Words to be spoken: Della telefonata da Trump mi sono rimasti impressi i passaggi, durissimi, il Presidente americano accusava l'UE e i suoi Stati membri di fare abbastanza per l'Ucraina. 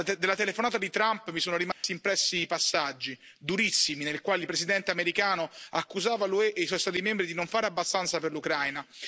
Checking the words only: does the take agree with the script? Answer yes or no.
no